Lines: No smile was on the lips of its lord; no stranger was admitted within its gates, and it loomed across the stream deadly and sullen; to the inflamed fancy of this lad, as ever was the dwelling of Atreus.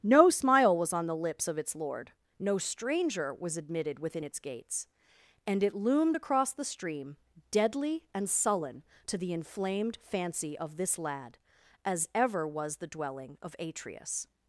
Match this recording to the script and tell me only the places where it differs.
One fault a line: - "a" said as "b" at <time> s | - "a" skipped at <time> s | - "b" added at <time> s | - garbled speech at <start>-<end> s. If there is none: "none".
none